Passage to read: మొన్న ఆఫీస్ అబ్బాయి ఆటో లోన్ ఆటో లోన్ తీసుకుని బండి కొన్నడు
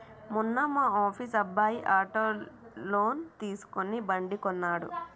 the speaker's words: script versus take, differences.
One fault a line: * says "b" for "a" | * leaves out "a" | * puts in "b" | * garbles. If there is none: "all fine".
* puts in "మా"
* leaves out "ఆటో లోన్"